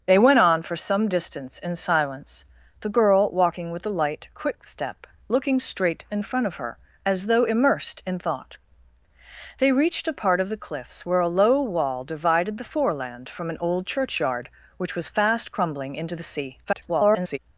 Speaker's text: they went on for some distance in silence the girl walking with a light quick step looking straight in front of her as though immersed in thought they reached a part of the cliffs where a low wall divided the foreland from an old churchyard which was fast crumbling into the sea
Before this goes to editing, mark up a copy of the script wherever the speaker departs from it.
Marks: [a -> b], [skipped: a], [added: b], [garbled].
they went on for some distance in silence the girl walking with a light quick step looking straight in front of her as though immersed in thought they reached a part of the cliffs where a low wall divided the foreland from an old churchyard which was fast crumbling into the sea [garbled]